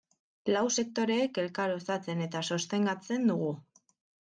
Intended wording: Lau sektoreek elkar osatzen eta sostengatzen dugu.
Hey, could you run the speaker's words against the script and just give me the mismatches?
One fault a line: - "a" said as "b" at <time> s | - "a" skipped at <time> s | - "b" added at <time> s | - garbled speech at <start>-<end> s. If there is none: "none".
none